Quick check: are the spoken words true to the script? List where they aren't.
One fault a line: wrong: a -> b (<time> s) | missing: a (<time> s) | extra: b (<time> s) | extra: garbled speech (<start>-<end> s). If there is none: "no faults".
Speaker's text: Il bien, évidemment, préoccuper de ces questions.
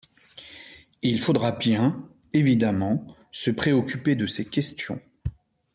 extra: faudra (1.2 s)
extra: se (3.3 s)